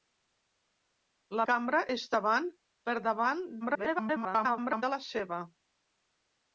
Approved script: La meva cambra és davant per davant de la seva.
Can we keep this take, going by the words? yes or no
no